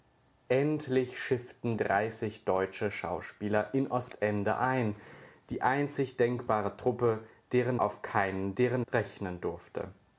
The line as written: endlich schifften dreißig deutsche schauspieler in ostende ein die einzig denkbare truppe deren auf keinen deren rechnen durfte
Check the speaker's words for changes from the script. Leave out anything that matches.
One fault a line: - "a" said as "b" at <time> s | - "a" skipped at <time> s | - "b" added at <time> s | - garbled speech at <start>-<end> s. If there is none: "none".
none